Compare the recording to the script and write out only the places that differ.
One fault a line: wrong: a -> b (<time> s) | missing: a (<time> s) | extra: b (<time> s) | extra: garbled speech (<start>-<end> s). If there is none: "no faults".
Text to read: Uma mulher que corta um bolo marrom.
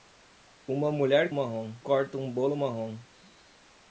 wrong: que -> marrom (1.3 s)